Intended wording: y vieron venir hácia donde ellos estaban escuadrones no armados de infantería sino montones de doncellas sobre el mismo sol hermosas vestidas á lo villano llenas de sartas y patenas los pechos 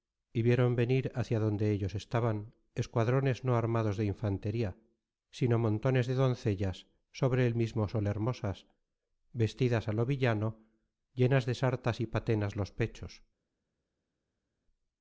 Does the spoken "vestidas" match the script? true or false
true